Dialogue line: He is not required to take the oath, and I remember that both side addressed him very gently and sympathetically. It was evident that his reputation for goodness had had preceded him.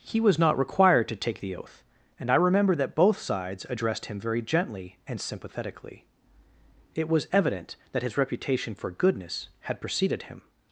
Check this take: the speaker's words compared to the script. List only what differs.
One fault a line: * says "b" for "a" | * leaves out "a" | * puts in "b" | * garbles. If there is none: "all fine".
* says "was" for "is"
* says "sides" for "side"
* leaves out "had"